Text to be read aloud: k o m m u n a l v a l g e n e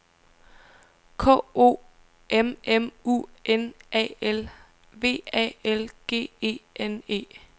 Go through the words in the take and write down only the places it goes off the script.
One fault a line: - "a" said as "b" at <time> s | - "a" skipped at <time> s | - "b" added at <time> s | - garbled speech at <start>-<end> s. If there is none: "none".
none